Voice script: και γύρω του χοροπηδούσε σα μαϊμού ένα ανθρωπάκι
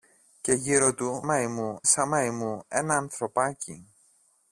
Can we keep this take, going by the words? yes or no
no